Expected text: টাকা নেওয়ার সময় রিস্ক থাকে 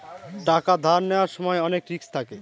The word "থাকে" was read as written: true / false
true